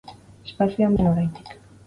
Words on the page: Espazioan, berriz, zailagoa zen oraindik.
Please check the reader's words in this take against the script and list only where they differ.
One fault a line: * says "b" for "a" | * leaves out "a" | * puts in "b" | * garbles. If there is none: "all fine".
* leaves out "berriz zailagoa"